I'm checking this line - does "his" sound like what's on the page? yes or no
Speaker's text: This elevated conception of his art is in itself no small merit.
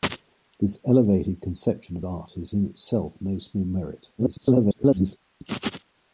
no